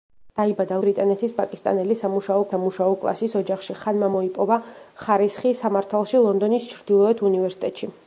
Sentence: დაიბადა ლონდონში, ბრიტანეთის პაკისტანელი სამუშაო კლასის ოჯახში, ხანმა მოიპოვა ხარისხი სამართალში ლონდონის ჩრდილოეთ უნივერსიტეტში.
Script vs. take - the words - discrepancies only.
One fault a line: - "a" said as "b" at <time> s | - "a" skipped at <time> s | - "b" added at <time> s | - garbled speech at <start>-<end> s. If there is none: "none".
- "ლონდონში" skipped at 0.8 s
- "სამუშაო" added at 2.5 s